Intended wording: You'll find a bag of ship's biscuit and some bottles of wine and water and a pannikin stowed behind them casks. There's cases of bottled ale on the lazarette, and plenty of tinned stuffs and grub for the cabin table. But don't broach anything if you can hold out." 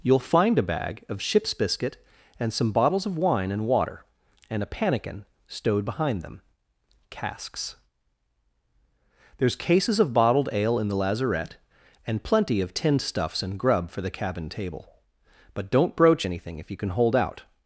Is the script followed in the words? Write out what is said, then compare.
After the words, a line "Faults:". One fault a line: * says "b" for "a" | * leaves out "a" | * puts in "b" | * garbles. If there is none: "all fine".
You'll find a bag of ship's biscuit and some bottles of wine and water and a pannikin stowed behind them casks. There's cases of bottled ale in the lazarette, and plenty of tinned stuffs and grub for the cabin table. But don't broach anything if you can hold out."
Faults:
* says "in" for "on"